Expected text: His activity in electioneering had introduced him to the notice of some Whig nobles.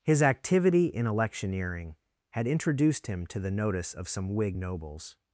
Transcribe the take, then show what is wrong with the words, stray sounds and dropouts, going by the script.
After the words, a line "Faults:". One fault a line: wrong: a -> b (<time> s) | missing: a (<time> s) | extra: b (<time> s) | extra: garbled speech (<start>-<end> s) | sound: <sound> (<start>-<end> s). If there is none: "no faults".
His activity in electioneering had introduced him to the notice of some Whig nobles.
Faults:
no faults